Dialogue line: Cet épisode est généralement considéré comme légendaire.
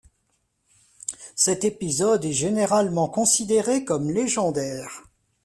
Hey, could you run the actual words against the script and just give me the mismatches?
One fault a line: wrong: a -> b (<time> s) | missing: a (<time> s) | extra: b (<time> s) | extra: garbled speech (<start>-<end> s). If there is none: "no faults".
no faults